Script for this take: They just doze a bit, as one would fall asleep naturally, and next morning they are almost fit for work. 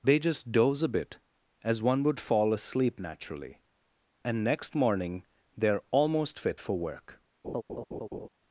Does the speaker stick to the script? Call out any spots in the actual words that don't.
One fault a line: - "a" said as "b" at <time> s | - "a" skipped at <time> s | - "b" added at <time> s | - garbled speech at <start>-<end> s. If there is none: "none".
none